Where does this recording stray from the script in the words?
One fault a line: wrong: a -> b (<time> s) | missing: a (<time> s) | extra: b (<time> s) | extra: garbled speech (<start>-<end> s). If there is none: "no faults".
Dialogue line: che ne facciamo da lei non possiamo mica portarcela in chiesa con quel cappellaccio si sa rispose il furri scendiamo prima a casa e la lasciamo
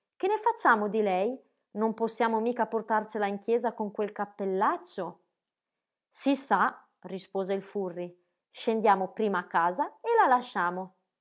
wrong: da -> di (0.9 s)